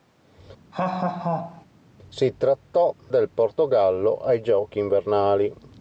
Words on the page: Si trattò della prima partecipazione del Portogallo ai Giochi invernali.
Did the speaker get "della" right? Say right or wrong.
wrong